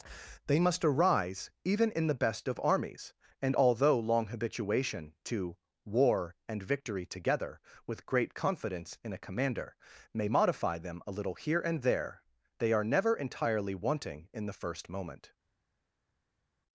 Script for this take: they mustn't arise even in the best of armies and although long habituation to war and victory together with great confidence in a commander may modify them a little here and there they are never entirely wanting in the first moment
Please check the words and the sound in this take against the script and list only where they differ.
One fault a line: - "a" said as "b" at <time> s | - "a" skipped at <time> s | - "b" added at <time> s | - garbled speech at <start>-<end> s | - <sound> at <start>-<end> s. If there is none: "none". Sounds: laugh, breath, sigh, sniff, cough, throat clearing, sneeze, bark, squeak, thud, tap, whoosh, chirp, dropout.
- "mustn't" said as "must" at 0.6 s